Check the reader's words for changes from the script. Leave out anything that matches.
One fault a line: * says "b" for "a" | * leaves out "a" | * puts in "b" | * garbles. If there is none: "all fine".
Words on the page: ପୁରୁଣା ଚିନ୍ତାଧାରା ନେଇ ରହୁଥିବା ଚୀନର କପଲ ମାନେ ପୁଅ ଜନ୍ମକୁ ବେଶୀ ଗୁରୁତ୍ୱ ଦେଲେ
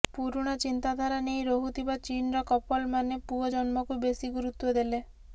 all fine